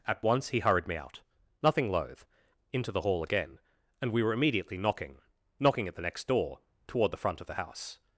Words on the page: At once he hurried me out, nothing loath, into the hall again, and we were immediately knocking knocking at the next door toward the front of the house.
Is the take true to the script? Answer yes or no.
yes